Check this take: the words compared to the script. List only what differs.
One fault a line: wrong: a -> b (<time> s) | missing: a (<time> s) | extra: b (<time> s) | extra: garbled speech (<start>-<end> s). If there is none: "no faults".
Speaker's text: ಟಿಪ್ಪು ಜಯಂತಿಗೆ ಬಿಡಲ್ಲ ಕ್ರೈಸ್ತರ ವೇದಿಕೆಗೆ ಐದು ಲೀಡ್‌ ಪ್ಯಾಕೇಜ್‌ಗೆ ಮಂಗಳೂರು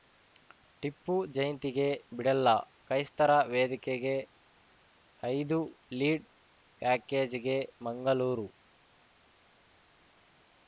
no faults